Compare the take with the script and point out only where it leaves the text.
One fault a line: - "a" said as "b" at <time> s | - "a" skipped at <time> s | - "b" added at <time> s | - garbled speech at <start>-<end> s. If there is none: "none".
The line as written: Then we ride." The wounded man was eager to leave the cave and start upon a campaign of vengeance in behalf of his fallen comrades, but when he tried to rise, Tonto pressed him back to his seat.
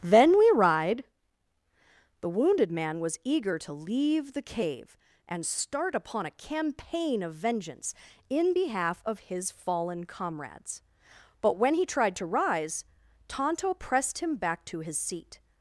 none